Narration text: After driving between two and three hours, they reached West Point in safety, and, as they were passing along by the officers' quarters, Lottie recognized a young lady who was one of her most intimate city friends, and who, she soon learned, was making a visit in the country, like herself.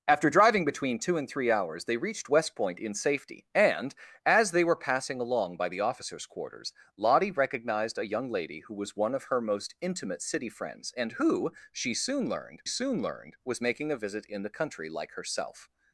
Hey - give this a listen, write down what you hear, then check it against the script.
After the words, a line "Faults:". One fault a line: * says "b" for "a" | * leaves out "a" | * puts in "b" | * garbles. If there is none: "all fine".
After driving between two and three hours, they reached West Point in safety, and, as they were passing along by the officers' quarters, Lottie recognized a young lady who was one of her most intimate city friends, and who, she soon learned soon learned, was making a visit in the country, like herself.
Faults:
* puts in "soon learned"